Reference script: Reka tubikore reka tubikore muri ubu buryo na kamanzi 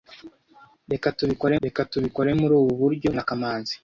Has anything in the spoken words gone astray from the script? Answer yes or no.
no